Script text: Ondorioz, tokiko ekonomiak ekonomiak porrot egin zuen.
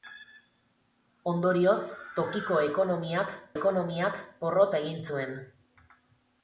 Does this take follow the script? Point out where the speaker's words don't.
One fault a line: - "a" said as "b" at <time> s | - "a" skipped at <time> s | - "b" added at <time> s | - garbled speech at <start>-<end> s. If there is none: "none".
none